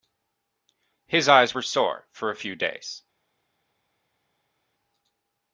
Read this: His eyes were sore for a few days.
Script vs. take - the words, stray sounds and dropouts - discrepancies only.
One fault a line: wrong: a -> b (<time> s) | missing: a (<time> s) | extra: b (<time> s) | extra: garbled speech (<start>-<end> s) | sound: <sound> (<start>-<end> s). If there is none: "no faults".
no faults